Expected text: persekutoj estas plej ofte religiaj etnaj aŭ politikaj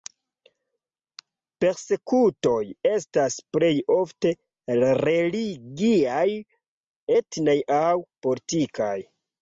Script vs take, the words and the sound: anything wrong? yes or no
no